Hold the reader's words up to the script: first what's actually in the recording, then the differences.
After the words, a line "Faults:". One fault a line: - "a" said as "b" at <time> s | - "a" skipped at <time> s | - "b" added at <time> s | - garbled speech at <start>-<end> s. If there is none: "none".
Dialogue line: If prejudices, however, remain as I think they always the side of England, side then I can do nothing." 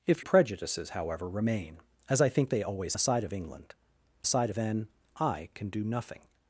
If prejudices, however, remain as I think they always the side of England, side then I can do nothing."
Faults:
none